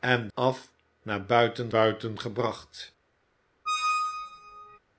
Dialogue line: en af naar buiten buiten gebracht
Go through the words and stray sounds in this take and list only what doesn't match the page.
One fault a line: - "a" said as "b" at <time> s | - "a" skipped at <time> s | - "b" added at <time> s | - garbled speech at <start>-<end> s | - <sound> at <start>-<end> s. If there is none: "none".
- squeak at 3.7-4.8 s